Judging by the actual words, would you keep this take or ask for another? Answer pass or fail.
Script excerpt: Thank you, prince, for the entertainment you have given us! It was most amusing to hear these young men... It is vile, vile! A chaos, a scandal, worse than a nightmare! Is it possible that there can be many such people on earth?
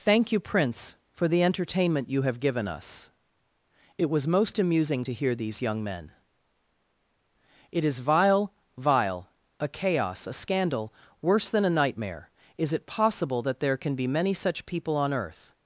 pass